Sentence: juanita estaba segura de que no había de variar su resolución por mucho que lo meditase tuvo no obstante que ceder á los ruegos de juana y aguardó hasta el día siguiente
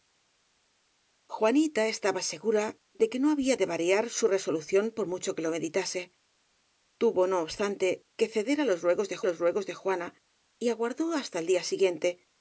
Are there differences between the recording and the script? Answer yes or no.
yes